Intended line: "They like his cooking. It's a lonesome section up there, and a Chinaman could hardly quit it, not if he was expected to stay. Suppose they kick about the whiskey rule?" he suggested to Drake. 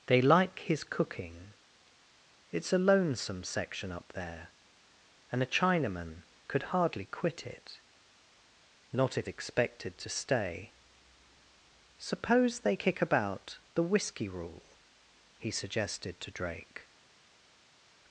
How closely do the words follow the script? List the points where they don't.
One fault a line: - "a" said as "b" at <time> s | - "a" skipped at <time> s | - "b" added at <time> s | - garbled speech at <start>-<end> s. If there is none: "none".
- "he was" skipped at 9.3 s